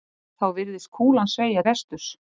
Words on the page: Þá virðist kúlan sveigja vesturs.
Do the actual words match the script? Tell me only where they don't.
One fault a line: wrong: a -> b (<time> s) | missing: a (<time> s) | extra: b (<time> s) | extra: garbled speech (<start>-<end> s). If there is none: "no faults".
no faults